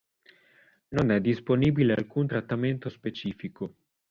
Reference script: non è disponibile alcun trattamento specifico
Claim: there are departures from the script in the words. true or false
false